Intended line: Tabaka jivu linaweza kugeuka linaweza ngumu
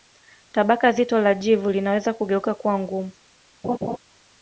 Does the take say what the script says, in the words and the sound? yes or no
no